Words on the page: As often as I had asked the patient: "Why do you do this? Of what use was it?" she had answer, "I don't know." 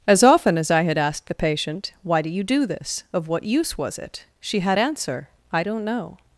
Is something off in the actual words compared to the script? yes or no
no